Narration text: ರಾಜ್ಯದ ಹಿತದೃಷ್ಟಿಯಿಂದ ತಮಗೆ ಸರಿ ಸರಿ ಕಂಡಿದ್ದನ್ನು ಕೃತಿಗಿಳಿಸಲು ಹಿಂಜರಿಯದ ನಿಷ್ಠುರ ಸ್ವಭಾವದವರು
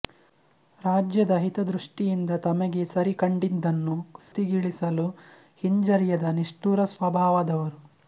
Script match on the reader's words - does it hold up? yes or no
no